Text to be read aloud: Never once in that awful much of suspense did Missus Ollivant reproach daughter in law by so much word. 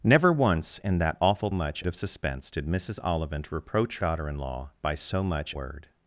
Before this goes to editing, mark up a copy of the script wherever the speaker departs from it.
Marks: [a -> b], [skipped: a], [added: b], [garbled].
Never once in that awful much of suspense did Missus Ollivant reproach daughter in law by so much word.